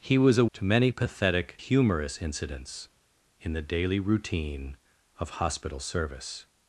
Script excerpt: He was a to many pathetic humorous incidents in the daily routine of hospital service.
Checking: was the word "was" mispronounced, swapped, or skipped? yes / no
no